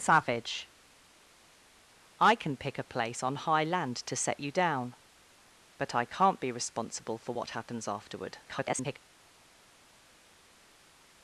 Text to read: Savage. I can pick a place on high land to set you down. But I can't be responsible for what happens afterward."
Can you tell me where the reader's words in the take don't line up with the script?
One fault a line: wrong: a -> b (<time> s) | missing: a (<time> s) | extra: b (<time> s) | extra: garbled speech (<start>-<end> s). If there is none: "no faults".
extra: garbled speech (8.4-9.0 s)